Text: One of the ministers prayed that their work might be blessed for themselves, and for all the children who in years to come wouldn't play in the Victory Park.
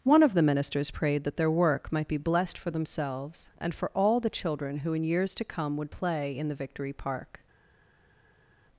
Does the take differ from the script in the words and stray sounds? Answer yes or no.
yes